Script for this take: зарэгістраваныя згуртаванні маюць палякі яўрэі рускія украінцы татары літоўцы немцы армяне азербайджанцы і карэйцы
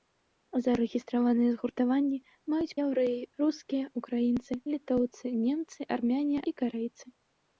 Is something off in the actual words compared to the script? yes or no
yes